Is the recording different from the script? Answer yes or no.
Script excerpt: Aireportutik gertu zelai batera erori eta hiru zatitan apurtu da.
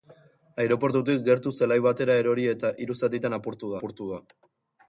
yes